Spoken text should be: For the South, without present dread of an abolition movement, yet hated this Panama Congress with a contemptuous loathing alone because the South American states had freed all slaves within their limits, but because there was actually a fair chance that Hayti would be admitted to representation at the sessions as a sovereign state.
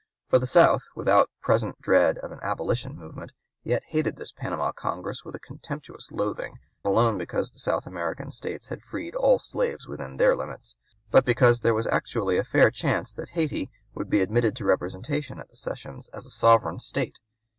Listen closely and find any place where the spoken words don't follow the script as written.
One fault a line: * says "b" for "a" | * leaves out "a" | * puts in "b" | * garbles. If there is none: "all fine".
all fine